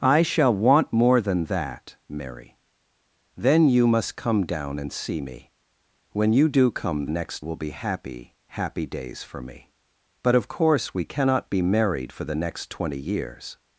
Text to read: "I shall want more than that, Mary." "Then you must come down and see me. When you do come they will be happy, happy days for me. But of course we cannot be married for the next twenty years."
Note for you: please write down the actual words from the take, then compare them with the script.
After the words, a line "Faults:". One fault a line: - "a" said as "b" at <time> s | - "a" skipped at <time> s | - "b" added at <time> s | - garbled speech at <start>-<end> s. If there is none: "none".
"I shall want more than that, Mary." "Then you must come down and see me. When you do come next will be happy, happy days for me. But of course we cannot be married for the next twenty years."
Faults:
- "they" said as "next" at 7.1 s